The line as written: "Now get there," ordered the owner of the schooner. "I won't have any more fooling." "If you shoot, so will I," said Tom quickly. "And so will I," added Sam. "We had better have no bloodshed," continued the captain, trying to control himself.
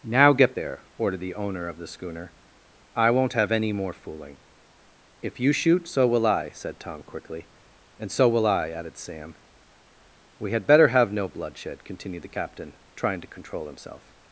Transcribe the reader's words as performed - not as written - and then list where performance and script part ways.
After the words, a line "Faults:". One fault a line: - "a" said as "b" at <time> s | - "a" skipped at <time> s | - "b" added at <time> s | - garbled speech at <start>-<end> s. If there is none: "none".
"Now get there," ordered the owner of the schooner. "I won't have any more fooling." "If you shoot, so will I," said Tom quickly. "And so will I," added Sam. "We had better have no bloodshed," continued the captain, trying to control himself.
Faults:
none